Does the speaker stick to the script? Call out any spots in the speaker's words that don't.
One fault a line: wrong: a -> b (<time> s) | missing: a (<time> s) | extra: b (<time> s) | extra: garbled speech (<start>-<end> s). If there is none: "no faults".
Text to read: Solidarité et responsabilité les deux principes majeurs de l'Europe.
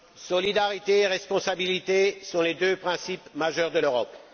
extra: sont (2.2 s)